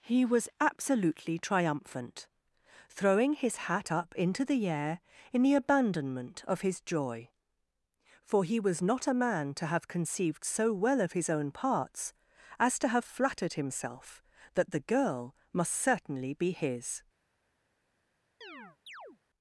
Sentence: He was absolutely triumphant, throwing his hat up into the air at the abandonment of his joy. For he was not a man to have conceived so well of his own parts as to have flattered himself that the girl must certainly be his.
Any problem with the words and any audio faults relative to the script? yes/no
yes